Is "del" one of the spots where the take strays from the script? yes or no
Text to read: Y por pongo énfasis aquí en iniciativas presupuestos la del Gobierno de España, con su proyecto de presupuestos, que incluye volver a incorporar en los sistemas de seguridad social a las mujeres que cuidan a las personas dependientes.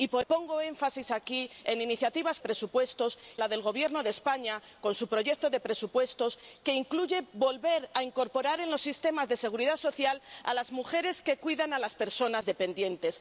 no